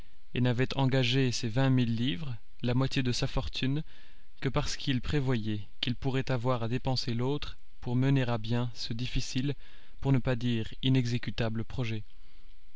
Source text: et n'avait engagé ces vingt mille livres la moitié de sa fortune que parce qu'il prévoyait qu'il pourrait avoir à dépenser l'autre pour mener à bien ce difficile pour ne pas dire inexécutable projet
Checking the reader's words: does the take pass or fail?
pass